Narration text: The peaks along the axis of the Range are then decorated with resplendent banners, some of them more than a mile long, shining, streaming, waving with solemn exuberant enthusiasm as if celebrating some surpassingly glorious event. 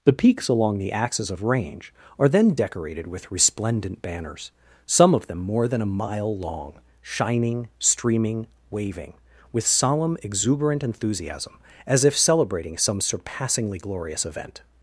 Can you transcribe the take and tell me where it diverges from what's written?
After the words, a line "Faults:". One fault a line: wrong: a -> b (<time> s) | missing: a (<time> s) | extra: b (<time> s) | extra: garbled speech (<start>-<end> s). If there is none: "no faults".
The peaks along the axis of Range are then decorated with resplendent banners, some of them more than a mile long, shining, streaming, waving with solemn exuberant enthusiasm as if celebrating some surpassingly glorious event.
Faults:
missing: the (1.4 s)